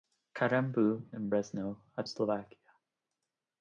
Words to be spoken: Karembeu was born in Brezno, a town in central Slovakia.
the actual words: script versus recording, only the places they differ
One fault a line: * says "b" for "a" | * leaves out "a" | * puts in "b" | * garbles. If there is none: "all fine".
* leaves out "was born"
* leaves out "town in central"